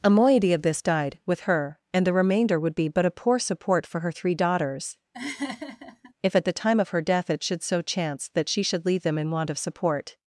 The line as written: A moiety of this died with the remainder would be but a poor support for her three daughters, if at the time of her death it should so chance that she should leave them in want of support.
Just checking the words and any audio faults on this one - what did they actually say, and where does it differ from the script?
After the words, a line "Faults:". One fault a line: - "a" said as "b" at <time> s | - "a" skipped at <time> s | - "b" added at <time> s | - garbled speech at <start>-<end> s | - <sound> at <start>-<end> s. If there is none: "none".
A moiety of this died with her, and the remainder would be but a poor support for her three daughters, if at the time of her death it should so chance that she should leave them in want of support.
Faults:
- "her and" added at 1.4 s
- laugh at 5.1-6.1 s